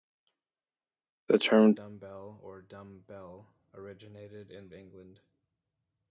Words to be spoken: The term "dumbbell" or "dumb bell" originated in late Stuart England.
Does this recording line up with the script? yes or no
no